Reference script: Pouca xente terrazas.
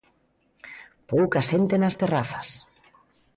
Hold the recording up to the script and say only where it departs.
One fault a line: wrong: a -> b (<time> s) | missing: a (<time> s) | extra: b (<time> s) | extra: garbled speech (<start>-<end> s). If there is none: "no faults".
extra: nas (1.8 s)